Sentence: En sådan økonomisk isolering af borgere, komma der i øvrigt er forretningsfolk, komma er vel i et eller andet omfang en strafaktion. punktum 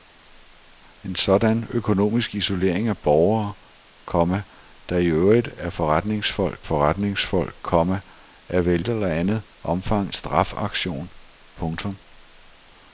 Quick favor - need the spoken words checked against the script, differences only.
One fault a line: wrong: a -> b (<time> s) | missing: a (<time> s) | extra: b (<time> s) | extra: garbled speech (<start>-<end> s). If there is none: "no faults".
extra: forretningsfolk (6.6 s)
missing: i (8.8 s)
missing: en (10.1 s)